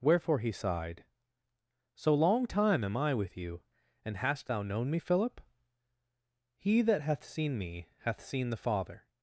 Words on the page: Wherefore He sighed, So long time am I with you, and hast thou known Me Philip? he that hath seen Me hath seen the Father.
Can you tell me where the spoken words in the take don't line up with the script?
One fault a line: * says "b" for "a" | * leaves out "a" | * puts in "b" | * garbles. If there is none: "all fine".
all fine